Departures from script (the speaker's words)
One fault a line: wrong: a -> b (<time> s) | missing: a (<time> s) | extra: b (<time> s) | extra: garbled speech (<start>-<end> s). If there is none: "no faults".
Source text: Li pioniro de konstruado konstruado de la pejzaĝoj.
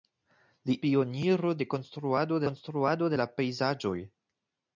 no faults